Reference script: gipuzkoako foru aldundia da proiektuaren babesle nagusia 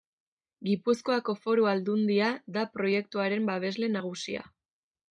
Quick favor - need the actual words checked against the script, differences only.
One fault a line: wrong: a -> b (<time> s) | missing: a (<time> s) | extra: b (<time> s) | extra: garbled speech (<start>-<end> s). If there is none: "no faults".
no faults